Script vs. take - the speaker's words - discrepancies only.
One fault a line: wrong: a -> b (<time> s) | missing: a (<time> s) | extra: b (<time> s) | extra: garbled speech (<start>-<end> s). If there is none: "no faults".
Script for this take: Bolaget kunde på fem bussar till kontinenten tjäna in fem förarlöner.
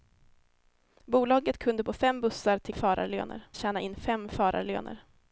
wrong: kontinenten -> förarlöner (2.7 s)